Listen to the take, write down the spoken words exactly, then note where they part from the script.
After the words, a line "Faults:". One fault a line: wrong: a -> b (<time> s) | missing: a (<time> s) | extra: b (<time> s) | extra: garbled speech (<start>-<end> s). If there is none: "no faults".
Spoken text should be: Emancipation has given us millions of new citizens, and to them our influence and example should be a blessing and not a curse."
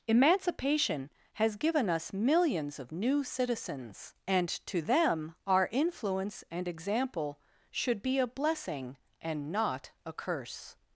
Emancipation has given us millions of new citizens, and to them our influence and example should be a blessing and not a curse."
Faults:
no faults